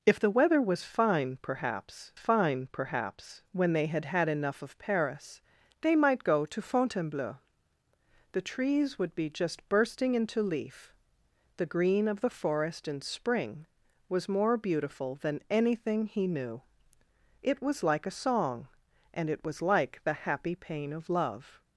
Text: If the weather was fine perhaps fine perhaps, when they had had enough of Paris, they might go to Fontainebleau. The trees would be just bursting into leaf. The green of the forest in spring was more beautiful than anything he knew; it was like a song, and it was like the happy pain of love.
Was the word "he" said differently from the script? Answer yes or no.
no